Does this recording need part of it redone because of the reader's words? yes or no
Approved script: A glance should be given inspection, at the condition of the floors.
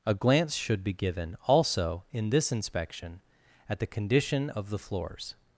yes